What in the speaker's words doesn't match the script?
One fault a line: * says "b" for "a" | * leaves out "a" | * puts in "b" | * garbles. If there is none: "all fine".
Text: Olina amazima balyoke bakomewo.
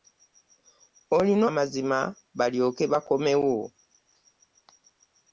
all fine